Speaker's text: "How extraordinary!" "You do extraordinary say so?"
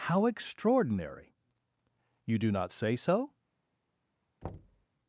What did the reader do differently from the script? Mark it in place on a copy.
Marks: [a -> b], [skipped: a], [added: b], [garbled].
"How extraordinary!" "You do [extraordinary -> not] say so?"